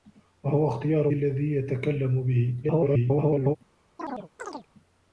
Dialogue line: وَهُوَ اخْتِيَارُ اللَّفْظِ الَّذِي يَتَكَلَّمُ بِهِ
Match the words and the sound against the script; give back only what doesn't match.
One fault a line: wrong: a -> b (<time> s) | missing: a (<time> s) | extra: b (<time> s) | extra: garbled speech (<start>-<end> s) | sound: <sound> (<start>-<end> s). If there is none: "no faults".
missing: اللَّفْظِ (1.1 s)
extra: garbled speech (2.6-3.6 s)
sound: chirp (4.0-4.7 s)